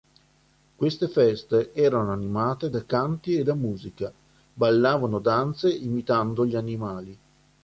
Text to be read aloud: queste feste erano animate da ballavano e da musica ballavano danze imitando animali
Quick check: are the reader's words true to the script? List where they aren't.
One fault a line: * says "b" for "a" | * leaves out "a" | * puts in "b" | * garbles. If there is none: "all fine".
* says "canti" for "ballavano"
* puts in "gli"